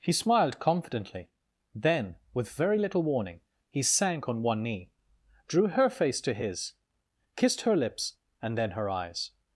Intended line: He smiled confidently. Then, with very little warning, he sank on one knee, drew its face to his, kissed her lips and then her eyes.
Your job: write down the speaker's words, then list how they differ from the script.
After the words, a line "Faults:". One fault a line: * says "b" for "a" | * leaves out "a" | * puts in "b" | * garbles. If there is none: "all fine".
He smiled confidently. Then, with very little warning, he sank on one knee, drew her face to his, kissed her lips and then her eyes.
Faults:
* says "her" for "its"